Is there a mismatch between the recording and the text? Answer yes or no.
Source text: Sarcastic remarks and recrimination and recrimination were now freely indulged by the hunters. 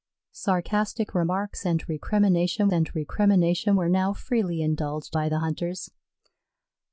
no